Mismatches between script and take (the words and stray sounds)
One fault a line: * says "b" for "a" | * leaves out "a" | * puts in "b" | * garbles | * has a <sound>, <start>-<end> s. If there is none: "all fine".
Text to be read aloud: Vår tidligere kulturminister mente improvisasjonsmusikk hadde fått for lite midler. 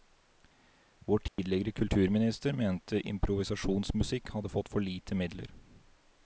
* has a dropout, 1.3-1.4 s